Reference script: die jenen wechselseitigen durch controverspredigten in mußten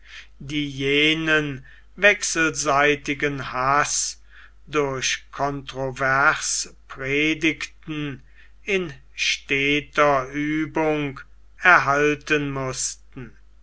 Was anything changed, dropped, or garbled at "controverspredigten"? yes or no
no